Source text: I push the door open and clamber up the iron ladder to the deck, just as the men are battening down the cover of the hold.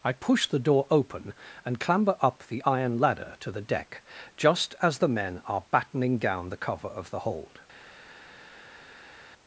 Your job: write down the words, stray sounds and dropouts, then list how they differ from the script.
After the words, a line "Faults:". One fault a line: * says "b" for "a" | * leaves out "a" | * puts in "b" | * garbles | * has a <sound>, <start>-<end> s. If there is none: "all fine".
I push the door open and clamber up the iron ladder to the deck, just as the men are battening down the cover of the hold.
Faults:
all fine